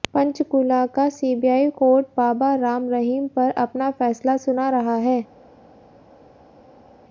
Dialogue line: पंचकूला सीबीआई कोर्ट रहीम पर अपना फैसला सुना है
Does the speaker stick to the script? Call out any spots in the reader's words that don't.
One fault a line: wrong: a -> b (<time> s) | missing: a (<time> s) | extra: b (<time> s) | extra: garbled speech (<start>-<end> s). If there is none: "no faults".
extra: का (0.9 s)
extra: बाबा राम (2.2 s)
extra: रहा (4.7 s)